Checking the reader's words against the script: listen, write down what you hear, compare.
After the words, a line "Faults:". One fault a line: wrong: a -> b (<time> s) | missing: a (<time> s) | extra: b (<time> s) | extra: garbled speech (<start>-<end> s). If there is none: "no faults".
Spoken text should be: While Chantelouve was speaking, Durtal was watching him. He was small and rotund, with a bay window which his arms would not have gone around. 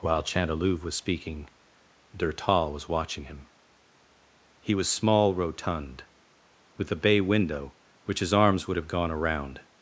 While Chantelouve was speaking, Durtal was watching him. He was small rotund, with a bay window which his arms would have gone around.
Faults:
missing: and (5.3 s)
missing: not (8.8 s)